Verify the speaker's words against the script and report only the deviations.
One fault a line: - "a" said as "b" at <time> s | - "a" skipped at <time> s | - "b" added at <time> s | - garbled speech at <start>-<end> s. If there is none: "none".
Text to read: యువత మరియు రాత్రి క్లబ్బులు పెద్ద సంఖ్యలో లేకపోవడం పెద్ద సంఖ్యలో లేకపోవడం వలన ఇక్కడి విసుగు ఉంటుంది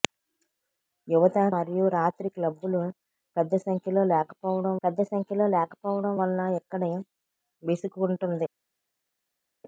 none